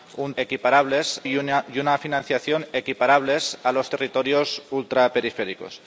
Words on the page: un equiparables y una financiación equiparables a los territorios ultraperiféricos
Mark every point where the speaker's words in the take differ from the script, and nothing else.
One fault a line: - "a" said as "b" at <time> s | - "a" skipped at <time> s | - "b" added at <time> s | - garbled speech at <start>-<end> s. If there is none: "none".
none